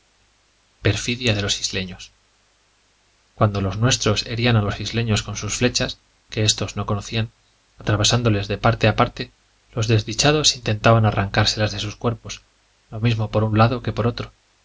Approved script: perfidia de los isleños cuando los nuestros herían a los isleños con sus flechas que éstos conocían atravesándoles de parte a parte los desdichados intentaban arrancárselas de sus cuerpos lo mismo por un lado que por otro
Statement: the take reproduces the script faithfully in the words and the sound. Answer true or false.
false